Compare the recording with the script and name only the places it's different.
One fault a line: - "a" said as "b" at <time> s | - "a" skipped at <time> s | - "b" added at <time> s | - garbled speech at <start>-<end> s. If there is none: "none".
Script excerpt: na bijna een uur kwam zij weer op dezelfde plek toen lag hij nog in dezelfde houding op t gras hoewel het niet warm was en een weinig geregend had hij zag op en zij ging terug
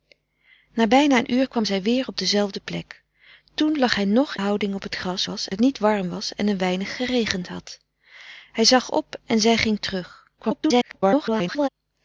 - "in dezelfde" skipped at 4.4 s
- "hoewel" said as "was" at 5.2 s
- garbled speech at 10.4-11.7 s